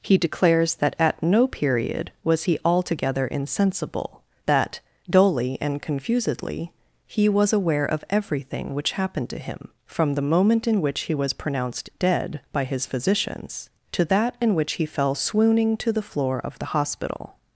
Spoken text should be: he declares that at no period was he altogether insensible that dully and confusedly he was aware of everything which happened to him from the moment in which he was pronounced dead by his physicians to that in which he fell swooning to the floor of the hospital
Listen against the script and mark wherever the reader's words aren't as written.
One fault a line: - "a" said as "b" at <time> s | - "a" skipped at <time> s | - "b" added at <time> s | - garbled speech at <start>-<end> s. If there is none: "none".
none